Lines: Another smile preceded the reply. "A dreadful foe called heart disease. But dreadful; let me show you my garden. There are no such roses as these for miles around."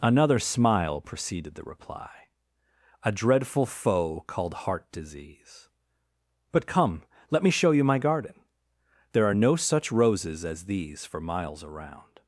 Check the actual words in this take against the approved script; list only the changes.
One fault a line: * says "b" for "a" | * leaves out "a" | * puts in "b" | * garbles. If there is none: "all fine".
* says "come" for "dreadful"